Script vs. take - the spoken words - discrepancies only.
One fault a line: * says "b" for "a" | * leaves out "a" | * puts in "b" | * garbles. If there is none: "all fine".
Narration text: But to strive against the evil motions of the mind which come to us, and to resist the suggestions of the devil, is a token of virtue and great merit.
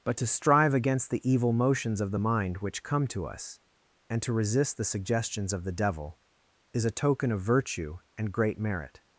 all fine